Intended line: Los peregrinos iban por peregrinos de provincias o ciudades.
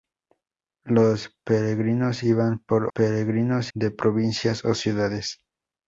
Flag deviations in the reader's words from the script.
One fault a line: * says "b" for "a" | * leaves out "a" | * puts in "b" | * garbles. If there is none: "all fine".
all fine